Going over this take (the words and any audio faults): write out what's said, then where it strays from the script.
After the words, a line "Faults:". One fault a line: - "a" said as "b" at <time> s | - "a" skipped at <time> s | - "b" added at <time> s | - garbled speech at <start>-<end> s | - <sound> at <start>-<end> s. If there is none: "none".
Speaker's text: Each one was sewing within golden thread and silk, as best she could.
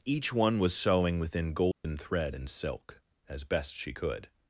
Each one was sewing within golden thread and silk, as best she could.
Faults:
- dropout at 1.7-1.8 s